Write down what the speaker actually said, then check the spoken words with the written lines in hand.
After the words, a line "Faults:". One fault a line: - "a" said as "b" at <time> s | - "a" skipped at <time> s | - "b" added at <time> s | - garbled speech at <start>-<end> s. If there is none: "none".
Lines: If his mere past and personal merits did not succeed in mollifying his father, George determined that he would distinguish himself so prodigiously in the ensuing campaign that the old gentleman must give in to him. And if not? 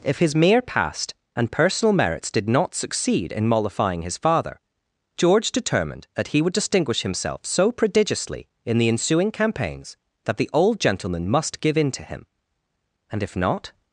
If his mere past and personal merits did not succeed in mollifying his father, George determined that he would distinguish himself so prodigiously in the ensuing campaigns that the old gentleman must give in to him. And if not?
Faults:
- "campaign" said as "campaigns" at 9.3 s